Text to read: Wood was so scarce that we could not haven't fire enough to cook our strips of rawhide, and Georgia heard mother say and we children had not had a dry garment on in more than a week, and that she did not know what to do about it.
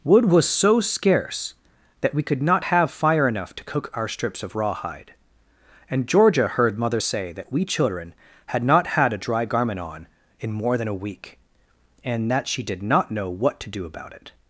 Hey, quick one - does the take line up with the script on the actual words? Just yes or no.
no